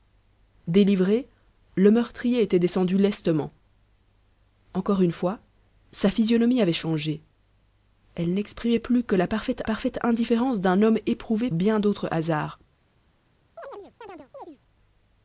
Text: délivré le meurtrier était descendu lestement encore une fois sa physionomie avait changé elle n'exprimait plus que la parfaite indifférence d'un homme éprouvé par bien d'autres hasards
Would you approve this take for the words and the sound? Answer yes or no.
no